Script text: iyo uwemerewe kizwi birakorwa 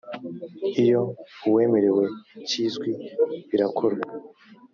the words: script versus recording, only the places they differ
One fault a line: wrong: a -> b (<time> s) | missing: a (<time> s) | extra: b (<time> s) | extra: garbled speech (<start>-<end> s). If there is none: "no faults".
no faults